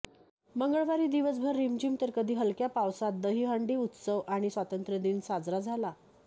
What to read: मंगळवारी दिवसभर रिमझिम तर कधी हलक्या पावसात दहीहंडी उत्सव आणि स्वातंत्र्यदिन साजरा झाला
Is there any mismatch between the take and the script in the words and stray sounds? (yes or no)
no